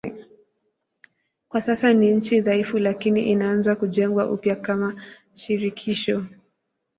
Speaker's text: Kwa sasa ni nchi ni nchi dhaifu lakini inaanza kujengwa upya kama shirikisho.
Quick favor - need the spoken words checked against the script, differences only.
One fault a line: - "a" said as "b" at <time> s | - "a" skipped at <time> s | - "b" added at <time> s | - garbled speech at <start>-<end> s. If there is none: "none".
- "ni nchi" skipped at 2.4 s